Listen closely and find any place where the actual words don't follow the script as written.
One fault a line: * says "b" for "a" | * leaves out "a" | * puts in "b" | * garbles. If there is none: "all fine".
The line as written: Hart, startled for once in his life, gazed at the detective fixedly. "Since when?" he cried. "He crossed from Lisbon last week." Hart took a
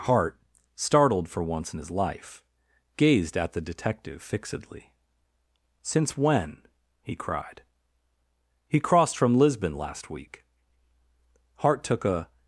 all fine